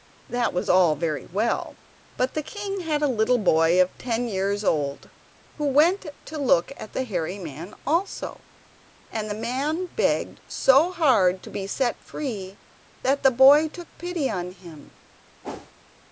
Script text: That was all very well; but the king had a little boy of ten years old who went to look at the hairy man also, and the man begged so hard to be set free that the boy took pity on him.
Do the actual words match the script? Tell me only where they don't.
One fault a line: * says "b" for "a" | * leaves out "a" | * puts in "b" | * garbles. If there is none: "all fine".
all fine